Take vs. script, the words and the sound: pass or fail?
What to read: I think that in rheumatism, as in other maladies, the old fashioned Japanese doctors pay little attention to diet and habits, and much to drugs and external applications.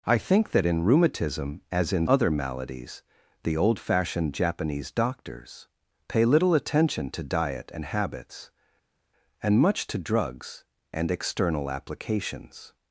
pass